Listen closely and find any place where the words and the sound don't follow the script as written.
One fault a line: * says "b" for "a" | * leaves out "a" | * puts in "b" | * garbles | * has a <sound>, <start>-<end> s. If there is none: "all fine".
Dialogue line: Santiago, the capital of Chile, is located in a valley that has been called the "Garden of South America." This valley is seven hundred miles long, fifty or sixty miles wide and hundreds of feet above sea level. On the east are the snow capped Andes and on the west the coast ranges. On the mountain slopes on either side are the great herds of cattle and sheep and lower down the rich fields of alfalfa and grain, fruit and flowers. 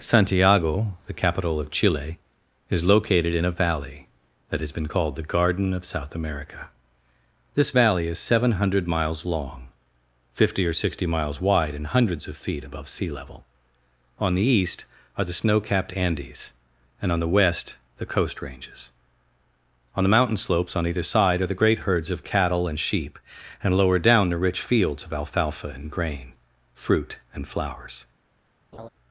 * has a laugh, 28.7-28.9 s